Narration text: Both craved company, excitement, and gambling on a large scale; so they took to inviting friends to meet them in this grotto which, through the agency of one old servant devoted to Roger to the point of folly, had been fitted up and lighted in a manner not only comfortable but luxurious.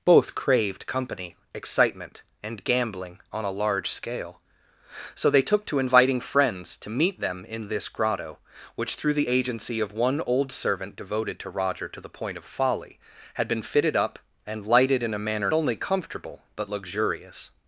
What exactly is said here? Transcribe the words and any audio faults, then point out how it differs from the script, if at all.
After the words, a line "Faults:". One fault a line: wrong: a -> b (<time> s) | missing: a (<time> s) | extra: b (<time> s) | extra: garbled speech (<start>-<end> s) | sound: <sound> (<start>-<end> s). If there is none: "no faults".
Both craved company, excitement, and gambling on a large scale; so they took to inviting friends to meet them in this grotto which, through the agency of one old servant devoted to Roger to the point of folly, had been fitted up and lighted in a manner only comfortable but luxurious.
Faults:
missing: not (15.5 s)